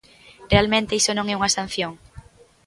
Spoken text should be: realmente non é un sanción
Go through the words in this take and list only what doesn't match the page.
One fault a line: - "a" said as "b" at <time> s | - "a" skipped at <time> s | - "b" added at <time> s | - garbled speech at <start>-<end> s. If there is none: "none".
- "iso" added at 1.0 s
- "un" said as "unha" at 1.4 s